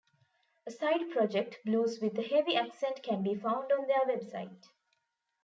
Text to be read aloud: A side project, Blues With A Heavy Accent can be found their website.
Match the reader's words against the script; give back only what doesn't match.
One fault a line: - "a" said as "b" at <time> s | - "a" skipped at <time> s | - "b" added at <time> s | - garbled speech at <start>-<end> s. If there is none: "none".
- "on" added at 3.7 s